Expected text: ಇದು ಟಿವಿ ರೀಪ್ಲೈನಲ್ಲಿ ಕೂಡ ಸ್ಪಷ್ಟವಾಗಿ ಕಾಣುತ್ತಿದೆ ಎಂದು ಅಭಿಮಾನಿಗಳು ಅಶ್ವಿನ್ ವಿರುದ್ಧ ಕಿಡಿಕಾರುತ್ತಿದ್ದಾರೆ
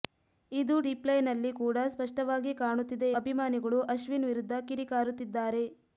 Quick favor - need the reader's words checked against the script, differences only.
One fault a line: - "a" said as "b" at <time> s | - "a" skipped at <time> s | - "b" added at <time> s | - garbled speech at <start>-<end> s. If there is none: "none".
- "ಟಿವಿ" skipped at 0.8 s
- "ಎಂದು" skipped at 3.1 s